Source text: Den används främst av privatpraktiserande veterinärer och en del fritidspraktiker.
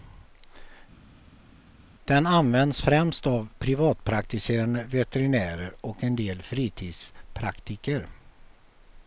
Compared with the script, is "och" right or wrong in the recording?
right